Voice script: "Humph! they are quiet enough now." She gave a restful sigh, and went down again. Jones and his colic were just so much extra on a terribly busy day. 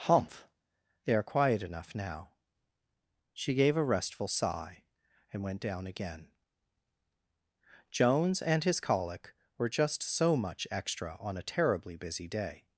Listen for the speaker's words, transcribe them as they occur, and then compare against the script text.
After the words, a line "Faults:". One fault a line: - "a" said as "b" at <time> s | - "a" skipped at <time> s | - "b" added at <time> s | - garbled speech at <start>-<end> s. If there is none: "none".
"Humph! they are quiet enough now." She gave a restful sigh, and went down again. Jones and his colic were just so much extra on a terribly busy day.
Faults:
none